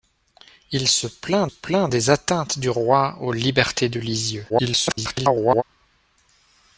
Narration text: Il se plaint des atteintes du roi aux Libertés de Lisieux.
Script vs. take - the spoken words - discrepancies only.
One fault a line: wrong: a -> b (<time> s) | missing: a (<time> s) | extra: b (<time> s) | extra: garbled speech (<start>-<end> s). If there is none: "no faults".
extra: plaint (1.4 s)
extra: garbled speech (4.5-5.6 s)